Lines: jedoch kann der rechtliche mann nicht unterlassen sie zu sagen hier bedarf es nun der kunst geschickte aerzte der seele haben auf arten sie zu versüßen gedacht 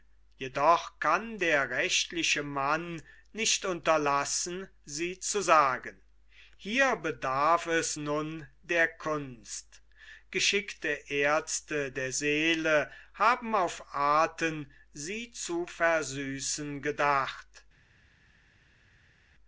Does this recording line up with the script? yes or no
yes